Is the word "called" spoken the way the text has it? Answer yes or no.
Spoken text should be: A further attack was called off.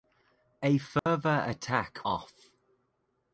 no